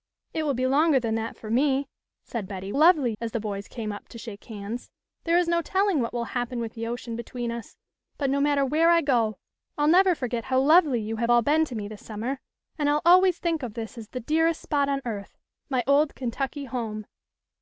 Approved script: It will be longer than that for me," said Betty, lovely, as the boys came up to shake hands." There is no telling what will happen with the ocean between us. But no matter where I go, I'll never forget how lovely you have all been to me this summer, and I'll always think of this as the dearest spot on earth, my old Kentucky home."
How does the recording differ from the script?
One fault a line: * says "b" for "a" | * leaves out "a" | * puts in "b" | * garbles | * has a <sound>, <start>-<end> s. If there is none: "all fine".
all fine